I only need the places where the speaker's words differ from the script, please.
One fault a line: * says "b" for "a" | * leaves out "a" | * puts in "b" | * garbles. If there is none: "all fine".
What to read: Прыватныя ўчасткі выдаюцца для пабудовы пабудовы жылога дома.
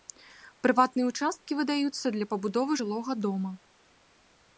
* leaves out "пабудовы"